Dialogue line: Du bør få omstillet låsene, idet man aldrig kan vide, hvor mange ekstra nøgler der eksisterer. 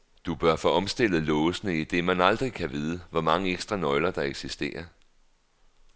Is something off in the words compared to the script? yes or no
no